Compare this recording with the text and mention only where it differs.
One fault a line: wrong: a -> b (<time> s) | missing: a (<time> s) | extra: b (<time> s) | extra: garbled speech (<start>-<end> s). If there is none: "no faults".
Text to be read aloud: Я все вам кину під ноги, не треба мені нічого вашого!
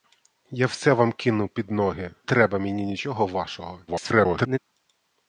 missing: не (2.1 s)
extra: garbled speech (3.9-4.6 s)